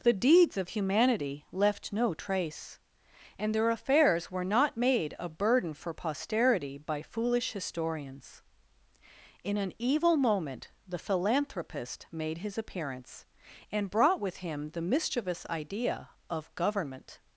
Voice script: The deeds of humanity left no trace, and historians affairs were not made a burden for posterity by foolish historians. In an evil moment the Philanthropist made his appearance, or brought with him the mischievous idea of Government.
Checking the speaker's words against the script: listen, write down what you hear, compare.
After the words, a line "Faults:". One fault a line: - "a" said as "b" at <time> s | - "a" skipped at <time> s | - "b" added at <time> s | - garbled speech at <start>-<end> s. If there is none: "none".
The deeds of humanity left no trace, and their affairs were not made a burden for posterity by foolish historians. In an evil moment the Philanthropist made his appearance, and brought with him the mischievous idea of Government.
Faults:
- "historians" said as "their" at 3.5 s
- "or" said as "and" at 13.7 s